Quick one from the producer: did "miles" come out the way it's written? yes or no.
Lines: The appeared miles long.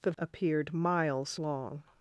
yes